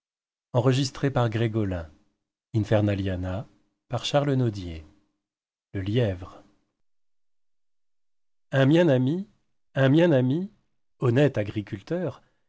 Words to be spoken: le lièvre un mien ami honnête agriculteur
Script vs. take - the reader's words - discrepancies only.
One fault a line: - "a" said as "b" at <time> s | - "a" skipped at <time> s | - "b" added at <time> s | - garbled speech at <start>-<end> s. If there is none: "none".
- "un mien ami" added at 9.7 s